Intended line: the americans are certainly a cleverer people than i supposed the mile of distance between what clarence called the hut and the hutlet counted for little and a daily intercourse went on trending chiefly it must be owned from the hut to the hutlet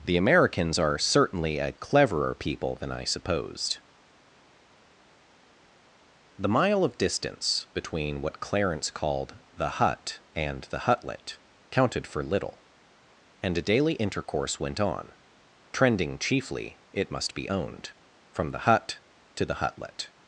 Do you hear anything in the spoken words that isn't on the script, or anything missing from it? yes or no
no